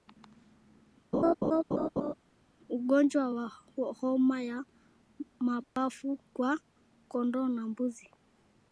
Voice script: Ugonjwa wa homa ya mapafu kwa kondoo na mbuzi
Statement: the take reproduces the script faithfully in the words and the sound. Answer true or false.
false